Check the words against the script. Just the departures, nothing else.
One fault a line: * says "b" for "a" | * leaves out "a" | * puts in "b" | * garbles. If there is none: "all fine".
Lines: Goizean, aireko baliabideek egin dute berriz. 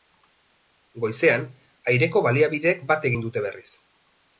* puts in "bat"